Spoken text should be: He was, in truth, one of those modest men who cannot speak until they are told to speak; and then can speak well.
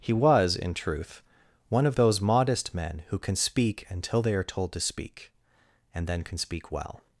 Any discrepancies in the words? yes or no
yes